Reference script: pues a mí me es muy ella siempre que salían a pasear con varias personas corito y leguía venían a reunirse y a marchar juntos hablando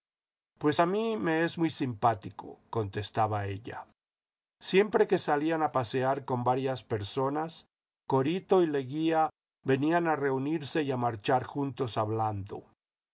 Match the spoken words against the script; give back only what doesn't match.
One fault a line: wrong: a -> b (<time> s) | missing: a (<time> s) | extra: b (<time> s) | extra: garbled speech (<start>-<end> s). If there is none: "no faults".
extra: simpático contestaba (1.7 s)